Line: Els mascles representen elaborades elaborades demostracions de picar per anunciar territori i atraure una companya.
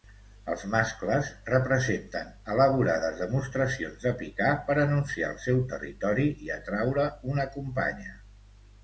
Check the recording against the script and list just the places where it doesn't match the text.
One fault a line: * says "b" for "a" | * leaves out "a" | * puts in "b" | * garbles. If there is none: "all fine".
* leaves out "elaborades"
* puts in "el seu"